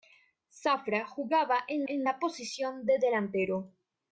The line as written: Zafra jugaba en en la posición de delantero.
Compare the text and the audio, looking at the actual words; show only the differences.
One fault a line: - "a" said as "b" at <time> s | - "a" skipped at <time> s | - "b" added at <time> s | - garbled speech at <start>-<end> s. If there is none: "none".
none